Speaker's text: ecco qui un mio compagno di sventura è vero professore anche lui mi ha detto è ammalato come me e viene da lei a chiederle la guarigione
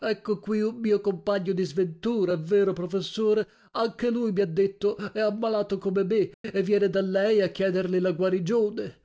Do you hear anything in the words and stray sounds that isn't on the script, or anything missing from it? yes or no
yes